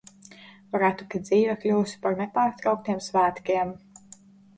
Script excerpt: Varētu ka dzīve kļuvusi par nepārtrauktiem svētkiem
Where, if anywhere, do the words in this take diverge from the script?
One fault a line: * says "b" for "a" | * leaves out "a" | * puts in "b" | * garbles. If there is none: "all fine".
all fine